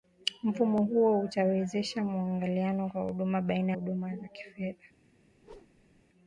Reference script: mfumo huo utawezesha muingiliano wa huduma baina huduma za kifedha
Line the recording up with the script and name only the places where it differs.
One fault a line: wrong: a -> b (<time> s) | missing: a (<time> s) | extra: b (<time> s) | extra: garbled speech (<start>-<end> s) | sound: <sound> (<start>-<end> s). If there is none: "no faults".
sound: whoosh (5.4-6.0 s)